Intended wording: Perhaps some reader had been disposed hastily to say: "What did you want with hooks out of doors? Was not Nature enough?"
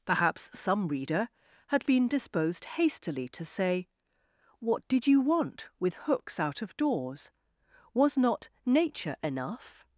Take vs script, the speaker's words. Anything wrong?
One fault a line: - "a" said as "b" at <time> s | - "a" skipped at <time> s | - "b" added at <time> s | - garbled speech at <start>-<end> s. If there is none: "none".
none